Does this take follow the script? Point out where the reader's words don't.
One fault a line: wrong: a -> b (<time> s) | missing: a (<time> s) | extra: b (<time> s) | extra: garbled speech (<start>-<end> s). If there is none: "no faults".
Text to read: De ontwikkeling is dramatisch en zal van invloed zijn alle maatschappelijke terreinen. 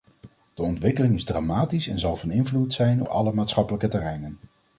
no faults